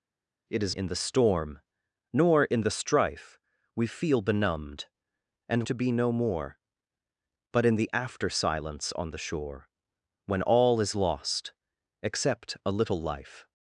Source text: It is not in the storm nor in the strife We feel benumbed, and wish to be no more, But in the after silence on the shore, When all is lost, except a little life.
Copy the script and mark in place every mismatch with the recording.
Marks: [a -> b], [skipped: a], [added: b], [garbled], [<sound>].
It is [skipped: not] in the storm nor in the strife We feel benumbed, and [skipped: wish] to be no more, But in the after silence on the shore, When all is lost, except a little life.